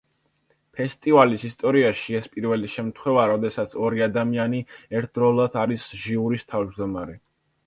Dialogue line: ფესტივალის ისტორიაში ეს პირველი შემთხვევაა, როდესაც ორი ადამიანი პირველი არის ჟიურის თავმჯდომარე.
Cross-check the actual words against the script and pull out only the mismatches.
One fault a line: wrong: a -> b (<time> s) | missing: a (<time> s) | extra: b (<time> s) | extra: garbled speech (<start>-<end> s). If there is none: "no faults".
wrong: პირველი -> ერთდროულად (5.0 s)